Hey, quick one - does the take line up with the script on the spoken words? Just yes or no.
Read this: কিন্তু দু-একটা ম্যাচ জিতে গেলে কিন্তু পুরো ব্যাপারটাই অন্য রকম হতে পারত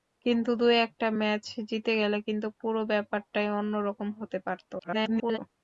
no